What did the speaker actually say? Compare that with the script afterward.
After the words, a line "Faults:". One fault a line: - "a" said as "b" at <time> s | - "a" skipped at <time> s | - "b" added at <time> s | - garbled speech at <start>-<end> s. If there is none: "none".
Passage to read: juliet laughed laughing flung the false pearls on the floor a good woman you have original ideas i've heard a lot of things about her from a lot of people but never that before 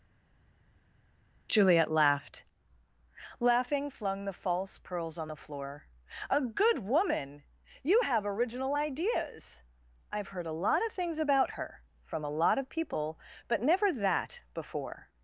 juliet laughed laughing flung the false pearls on the floor a good woman you have original ideas i've heard a lot of things about her from a lot of people but never that before
Faults:
none